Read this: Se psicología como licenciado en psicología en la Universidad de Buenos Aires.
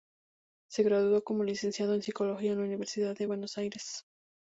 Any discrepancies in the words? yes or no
yes